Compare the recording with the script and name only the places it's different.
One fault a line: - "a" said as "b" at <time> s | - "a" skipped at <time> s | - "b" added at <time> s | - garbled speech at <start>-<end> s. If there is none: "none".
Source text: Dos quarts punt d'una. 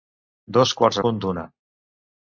none